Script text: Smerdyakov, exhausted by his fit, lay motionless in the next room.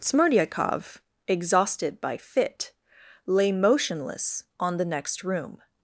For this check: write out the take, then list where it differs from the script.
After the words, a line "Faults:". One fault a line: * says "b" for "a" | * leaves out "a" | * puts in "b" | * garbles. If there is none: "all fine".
Smerdyakov, exhausted by fit, lay motionless on the next room.
Faults:
* leaves out "his"
* says "on" for "in"